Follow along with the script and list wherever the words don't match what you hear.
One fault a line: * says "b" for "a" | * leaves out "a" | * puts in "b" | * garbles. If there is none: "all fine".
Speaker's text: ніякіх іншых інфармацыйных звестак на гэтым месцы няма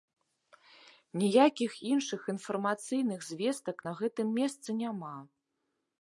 all fine